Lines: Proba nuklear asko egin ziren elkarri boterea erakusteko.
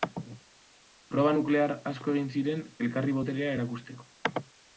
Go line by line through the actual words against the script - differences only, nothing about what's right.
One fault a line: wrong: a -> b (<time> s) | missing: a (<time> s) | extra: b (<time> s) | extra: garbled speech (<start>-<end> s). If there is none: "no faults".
no faults